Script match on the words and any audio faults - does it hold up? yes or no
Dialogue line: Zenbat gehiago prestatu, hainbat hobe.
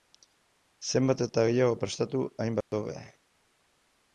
no